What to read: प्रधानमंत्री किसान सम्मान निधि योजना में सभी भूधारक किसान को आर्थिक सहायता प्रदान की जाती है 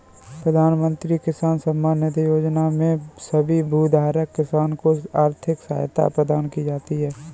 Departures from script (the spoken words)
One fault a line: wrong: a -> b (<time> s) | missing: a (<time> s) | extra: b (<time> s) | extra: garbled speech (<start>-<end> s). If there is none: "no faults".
no faults